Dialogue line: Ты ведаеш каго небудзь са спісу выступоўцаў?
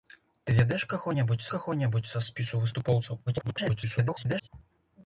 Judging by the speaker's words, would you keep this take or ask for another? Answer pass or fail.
fail